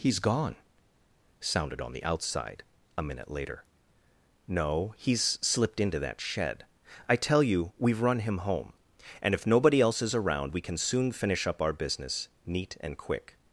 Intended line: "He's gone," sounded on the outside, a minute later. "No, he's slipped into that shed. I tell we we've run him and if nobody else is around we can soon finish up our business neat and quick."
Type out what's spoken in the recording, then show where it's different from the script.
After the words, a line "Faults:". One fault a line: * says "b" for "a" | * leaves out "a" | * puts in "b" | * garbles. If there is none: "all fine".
"He's gone," sounded on the outside, a minute later. "No, he's slipped into that shed. I tell you we've run him home, and if nobody else is around we can soon finish up our business neat and quick."
Faults:
* says "you" for "we"
* puts in "home"